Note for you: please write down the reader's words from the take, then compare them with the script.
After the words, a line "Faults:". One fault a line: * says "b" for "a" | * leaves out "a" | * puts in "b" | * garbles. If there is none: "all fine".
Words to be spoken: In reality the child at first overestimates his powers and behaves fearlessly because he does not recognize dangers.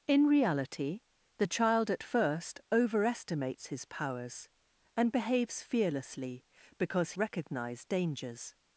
In reality the child at first overestimates his powers and behaves fearlessly because recognize dangers.
Faults:
* leaves out "he does not"